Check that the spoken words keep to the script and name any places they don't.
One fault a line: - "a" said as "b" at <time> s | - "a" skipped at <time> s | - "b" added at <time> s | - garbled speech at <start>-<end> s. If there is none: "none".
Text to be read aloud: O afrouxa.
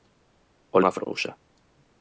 none